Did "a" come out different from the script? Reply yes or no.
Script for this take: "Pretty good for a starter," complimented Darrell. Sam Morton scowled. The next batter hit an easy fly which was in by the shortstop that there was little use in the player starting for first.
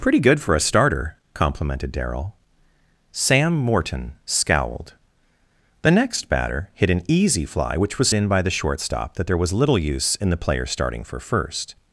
no